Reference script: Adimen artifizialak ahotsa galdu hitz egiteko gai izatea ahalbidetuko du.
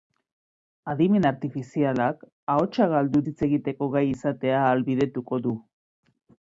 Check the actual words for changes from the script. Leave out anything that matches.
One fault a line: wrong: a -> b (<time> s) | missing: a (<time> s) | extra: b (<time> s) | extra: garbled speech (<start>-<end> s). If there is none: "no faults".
no faults